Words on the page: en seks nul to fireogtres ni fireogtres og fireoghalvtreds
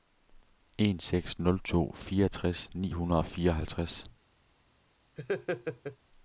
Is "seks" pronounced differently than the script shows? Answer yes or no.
no